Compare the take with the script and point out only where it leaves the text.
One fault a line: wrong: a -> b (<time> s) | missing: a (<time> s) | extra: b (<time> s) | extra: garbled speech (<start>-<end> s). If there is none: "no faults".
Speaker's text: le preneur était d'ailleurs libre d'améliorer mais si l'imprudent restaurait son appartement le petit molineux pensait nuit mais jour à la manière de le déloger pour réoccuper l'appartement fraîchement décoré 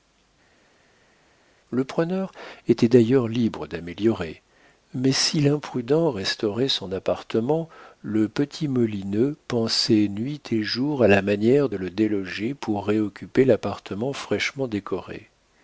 wrong: mais -> et (10.5 s)